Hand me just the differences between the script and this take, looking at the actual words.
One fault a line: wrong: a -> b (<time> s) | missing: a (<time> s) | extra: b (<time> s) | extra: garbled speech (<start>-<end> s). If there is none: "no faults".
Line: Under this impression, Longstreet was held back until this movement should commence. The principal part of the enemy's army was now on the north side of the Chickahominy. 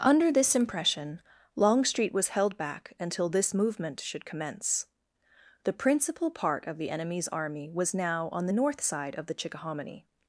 no faults